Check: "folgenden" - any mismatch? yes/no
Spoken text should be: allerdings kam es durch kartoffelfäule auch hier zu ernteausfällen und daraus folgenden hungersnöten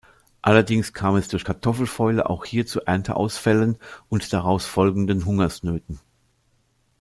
no